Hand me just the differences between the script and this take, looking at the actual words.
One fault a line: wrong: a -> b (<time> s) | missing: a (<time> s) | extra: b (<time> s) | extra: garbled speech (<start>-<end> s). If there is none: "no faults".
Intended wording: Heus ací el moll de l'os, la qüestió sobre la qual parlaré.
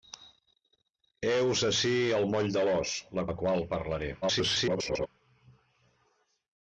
missing: qüestió sobre (3.3 s)
extra: garbled speech (4.2-5.1 s)